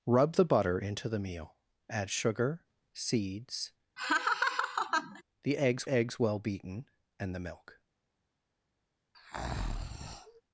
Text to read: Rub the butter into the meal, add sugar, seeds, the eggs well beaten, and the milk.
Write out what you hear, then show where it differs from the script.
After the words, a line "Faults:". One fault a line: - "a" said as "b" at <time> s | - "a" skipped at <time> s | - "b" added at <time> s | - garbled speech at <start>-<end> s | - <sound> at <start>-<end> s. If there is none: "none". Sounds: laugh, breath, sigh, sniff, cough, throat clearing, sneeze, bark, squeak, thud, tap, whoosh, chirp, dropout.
Rub the butter into the meal, add sugar, seeds, the eggs eggs well beaten, and the milk.
Faults:
- laugh at 4.0-5.2 s
- "eggs" added at 5.9 s
- breath at 9.1-10.4 s